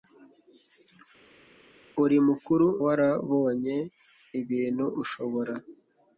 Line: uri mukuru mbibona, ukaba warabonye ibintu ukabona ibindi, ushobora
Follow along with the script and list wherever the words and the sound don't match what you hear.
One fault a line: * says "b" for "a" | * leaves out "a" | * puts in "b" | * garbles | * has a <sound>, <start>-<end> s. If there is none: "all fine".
* leaves out "mbibona ukaba"
* leaves out "ukabona ibindi"